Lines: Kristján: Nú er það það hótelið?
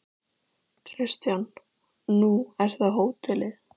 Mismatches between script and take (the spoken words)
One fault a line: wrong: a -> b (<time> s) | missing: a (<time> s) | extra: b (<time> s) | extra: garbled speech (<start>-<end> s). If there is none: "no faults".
missing: það (3.0 s)